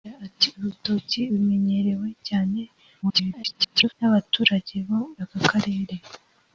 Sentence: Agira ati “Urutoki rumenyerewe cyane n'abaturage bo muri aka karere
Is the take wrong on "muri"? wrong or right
wrong